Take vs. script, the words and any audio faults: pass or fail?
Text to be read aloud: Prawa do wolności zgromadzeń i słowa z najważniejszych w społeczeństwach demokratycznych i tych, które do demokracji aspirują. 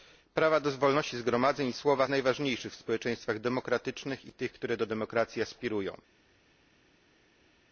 pass